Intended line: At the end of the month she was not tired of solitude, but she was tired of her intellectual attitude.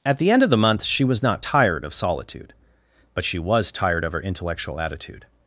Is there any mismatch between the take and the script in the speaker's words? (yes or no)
no